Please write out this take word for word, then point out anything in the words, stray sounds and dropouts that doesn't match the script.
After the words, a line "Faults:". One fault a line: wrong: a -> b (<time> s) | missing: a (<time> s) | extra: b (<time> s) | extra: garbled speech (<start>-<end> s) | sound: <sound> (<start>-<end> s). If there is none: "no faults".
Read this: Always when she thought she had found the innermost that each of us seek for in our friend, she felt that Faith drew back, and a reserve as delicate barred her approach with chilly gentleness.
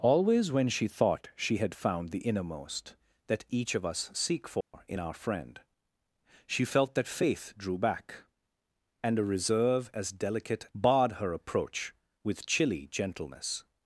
Always when she thought she had found the innermost that each of us seek for in our friend, she felt that Faith drew back, and a reserve as delicate barred her approach with chilly gentleness.
Faults:
sound: dropout (4.6-4.7 s)